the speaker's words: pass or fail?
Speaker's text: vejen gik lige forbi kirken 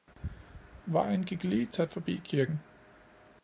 fail